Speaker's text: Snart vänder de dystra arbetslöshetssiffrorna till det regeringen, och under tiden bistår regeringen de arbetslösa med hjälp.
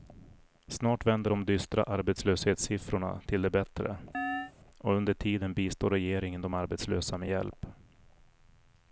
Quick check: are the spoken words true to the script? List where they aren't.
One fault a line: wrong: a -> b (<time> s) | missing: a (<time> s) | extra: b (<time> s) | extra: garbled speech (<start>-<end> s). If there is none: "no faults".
wrong: regeringen -> bättre (3.5 s)